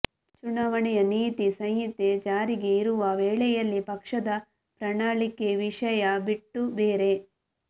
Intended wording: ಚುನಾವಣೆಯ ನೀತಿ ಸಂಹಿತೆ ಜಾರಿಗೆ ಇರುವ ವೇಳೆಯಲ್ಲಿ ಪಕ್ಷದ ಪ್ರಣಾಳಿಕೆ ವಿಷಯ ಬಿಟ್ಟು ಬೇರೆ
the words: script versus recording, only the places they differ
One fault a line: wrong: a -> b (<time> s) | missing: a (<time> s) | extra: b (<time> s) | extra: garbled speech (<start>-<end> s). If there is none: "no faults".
no faults